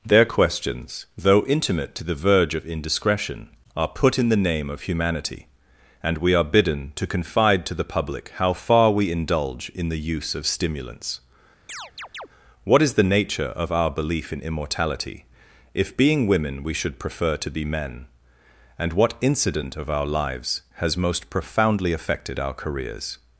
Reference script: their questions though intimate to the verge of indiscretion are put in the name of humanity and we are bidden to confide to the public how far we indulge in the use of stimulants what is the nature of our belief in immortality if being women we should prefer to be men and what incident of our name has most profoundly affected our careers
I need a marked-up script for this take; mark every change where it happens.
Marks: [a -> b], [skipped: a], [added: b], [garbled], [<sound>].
their questions though intimate to the verge of indiscretion are put in the name of humanity and we are bidden to confide to the public how far we indulge in the use of stimulants [chirp] what is the nature of our belief in immortality if being women we should prefer to be men and what incident of our [name -> lives] has most profoundly affected our careers